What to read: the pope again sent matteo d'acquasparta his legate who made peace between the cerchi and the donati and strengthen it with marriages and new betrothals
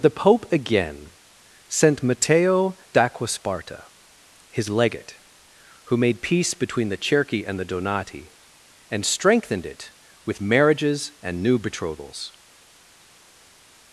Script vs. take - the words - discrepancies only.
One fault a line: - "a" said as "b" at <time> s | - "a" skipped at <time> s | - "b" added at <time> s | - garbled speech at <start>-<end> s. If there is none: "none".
- "strengthen" said as "strengthened" at 9.1 s